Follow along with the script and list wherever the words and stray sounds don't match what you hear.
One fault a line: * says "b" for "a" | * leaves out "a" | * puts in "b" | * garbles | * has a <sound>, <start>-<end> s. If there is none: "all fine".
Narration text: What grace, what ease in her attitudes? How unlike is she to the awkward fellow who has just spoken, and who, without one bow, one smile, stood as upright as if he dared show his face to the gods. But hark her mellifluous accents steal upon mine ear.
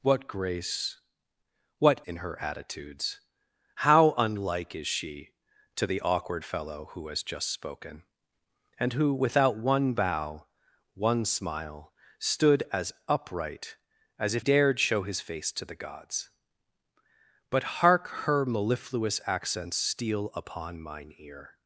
* leaves out "ease"
* leaves out "he"